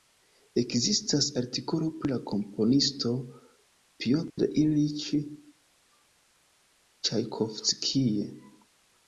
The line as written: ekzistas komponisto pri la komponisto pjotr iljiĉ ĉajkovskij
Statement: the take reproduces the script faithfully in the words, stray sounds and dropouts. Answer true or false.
false